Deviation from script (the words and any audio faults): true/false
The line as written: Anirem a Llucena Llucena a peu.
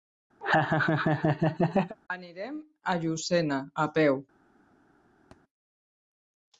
true